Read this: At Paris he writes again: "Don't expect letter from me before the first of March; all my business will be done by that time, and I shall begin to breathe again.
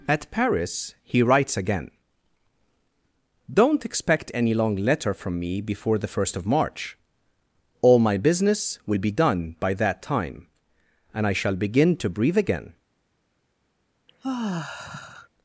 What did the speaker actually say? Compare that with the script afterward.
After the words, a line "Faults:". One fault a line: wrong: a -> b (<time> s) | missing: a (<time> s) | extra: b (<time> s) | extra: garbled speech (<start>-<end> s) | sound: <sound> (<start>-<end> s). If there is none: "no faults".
At Paris he writes again: "Don't expect any long letter from me before the first of March; all my business will be done by that time, and I shall begin to breathe again.
Faults:
extra: any long (4.3 s)
sound: sigh (14.1-15.3 s)